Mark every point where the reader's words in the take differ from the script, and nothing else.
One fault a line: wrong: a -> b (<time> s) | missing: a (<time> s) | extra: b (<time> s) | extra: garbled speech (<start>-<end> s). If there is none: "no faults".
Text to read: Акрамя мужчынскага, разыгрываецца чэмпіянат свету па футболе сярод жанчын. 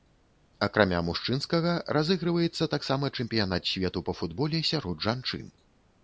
extra: таксама (2.8 s)